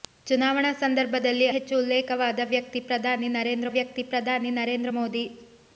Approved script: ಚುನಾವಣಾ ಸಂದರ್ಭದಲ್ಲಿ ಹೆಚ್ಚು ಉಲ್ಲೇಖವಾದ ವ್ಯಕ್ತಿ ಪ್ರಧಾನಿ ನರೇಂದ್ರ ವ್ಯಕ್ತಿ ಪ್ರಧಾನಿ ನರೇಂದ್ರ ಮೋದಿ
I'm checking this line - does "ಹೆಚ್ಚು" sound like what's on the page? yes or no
yes